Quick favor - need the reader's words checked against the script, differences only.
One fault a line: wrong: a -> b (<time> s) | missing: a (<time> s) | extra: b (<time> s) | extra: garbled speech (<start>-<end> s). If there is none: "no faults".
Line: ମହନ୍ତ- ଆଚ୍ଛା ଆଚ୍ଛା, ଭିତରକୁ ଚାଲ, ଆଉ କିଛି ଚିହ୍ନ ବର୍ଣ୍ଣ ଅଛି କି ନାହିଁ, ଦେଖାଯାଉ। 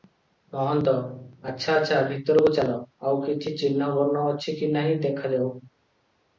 no faults